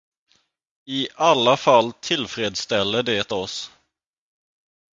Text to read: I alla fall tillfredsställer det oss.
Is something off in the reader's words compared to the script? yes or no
no